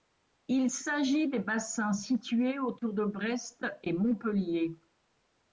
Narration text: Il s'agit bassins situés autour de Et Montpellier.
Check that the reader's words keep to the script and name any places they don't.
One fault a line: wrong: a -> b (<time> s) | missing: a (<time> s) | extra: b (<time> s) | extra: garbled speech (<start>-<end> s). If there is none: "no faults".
extra: des (1.3 s)
extra: Brest (3.0 s)